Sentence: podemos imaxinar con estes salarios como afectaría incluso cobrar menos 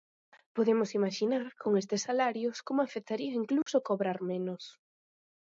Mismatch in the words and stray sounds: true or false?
true